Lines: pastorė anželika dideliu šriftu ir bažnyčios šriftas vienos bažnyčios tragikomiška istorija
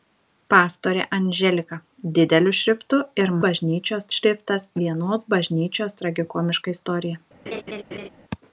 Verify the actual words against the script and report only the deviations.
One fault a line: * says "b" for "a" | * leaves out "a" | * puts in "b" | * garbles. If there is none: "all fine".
all fine